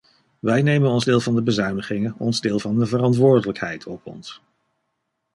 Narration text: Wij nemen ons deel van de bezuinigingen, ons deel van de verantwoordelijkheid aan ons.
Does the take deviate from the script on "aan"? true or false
true